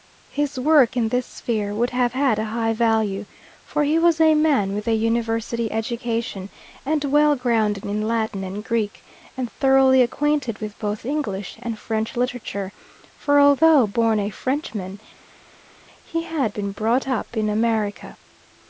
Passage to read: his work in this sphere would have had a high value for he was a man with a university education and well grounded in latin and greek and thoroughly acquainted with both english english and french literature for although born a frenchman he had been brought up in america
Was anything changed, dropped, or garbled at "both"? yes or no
no